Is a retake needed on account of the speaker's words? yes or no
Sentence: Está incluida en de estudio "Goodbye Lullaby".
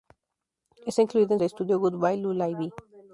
no